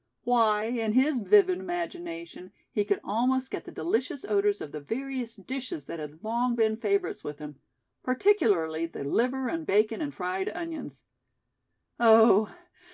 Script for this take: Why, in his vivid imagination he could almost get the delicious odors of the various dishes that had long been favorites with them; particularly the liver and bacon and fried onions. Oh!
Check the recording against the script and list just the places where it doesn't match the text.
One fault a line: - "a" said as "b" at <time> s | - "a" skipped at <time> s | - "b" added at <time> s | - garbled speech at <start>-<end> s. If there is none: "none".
- "them" said as "him" at 7.4 s